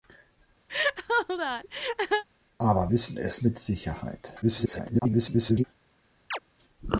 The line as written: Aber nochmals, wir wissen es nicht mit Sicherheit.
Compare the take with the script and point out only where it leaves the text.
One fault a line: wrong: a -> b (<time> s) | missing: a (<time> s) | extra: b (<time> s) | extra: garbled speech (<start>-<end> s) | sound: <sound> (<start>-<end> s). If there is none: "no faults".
sound: laugh (0.7-2.2 s)
missing: nochmals wir (2.9 s)
missing: nicht (3.4 s)
extra: garbled speech (4.4-5.6 s)
sound: chirp (6.3-6.4 s)